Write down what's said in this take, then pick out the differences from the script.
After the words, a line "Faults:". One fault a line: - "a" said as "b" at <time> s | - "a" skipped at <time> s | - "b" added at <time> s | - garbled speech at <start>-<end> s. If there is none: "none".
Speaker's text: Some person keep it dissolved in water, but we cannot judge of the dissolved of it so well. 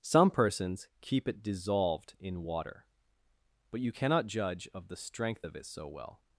Some persons keep it dissolved in water, but you cannot judge of the strength of it so well.
Faults:
- "person" said as "persons" at 0.3 s
- "we" said as "you" at 3.8 s
- "dissolved" said as "strength" at 5.0 s